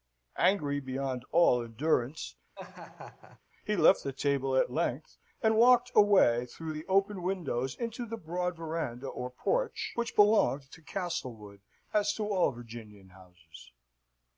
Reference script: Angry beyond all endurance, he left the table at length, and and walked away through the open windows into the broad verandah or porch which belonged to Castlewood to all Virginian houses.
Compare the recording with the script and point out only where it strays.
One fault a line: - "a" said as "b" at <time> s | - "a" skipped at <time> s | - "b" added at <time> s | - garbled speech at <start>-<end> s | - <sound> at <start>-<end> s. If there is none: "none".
- laugh at 2.5-3.4 s
- "and" skipped at 5.6 s
- "as" added at 11.9 s